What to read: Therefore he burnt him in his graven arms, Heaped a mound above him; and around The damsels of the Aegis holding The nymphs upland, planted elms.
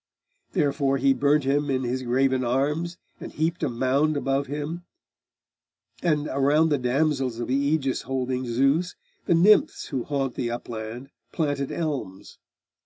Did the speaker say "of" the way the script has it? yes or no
yes